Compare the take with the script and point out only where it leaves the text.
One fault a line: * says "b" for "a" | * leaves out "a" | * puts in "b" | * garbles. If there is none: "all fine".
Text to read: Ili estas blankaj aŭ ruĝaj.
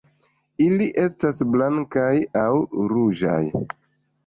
all fine